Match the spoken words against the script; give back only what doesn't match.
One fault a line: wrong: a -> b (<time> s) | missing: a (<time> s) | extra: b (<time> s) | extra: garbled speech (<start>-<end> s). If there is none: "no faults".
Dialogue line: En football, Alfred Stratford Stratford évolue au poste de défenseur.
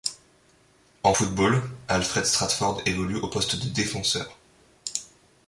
missing: Stratford (2.8 s)